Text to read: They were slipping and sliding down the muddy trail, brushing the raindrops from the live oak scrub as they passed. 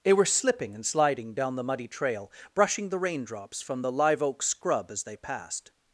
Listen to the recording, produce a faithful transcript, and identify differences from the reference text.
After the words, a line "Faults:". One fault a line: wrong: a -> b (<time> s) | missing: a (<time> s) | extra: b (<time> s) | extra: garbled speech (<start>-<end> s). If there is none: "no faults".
They were slipping and sliding down the muddy trail, brushing the raindrops from the live oak scrub as they passed.
Faults:
no faults